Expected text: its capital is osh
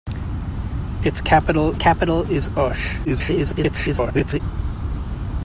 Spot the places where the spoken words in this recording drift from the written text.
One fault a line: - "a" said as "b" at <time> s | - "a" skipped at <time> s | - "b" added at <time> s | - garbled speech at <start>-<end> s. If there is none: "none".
- "capital" added at 1.8 s
- garbled speech at 3.0-4.4 s